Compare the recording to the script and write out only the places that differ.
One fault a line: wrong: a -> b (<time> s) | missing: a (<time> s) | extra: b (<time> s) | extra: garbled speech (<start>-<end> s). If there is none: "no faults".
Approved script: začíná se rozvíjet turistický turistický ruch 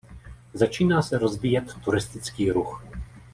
missing: turistický (2.5 s)